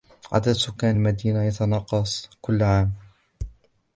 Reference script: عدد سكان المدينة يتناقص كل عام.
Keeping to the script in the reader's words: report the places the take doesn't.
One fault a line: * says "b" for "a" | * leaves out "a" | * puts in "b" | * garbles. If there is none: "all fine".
all fine